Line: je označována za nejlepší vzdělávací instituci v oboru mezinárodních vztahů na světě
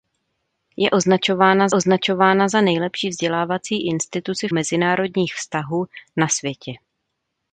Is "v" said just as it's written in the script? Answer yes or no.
no